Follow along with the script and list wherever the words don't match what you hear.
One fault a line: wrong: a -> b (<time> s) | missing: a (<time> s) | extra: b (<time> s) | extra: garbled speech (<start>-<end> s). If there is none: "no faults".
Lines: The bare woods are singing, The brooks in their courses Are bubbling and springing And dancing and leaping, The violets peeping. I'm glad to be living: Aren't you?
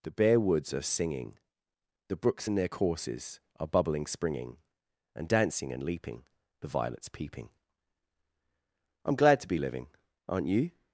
missing: and (4.0 s)